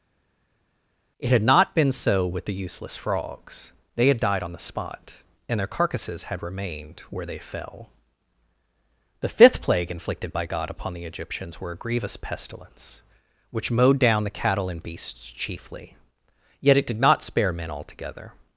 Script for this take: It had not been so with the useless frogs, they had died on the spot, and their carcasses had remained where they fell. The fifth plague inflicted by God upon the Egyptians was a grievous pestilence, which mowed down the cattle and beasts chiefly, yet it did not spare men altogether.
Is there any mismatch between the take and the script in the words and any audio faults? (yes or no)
yes